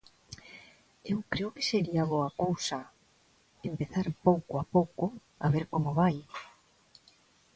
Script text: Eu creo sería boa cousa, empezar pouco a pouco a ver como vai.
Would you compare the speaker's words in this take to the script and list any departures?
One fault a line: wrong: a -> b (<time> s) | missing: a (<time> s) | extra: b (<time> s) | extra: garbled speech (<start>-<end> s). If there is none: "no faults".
extra: que (1.6 s)